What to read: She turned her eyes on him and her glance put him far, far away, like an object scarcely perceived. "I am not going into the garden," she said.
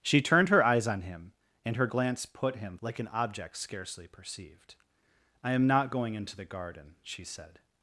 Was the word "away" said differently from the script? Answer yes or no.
yes